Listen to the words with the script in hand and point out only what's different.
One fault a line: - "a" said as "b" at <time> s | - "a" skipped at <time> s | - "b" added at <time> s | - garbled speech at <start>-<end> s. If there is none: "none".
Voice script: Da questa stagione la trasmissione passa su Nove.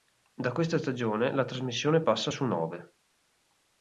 none